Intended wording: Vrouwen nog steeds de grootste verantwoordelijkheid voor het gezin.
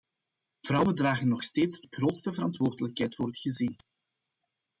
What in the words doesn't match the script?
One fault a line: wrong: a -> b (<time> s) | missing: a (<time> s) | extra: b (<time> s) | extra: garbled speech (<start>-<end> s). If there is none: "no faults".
extra: dragen (0.9 s)